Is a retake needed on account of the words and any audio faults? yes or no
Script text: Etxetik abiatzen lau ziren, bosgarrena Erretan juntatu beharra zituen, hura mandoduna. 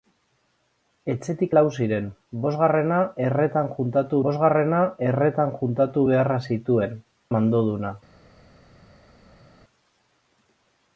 yes